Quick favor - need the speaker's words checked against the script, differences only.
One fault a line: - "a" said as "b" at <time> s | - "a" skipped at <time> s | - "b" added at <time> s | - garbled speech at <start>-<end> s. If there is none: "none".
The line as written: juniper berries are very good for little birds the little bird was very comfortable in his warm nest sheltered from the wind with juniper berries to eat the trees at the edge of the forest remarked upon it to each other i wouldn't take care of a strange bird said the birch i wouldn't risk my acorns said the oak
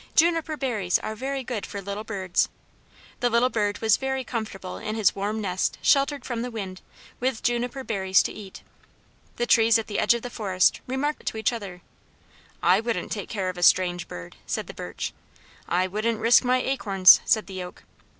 - "upon" skipped at 11.2 s